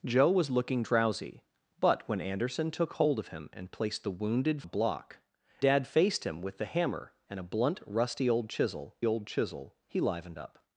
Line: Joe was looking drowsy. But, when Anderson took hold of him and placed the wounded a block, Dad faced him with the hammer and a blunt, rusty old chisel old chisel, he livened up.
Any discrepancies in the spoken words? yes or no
no